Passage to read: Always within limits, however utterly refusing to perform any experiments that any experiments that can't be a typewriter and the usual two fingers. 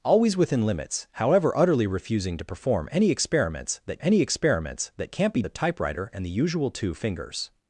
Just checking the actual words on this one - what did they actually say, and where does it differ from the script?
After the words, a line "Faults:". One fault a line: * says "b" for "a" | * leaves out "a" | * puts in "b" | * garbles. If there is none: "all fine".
Always within limits, however utterly refusing to perform any experiments that any experiments that can't be a typewriter and the usual two fingers.
Faults:
all fine